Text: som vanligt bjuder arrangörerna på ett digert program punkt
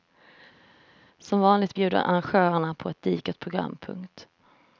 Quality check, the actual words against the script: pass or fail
pass